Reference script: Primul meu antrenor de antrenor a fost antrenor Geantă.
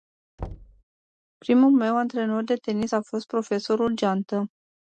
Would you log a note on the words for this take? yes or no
yes